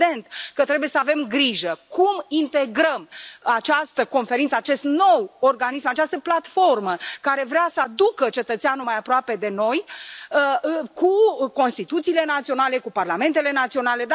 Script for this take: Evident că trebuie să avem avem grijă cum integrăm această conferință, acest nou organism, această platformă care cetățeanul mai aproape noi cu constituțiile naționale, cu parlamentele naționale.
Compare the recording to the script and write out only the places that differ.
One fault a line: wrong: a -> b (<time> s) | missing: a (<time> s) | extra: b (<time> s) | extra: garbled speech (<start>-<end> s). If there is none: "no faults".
missing: avem (1.2 s)
extra: vrea să aducă (7.4 s)
extra: de (9.4 s)